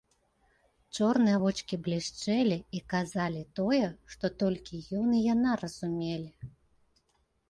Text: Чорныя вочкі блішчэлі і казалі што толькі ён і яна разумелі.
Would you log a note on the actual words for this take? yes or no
yes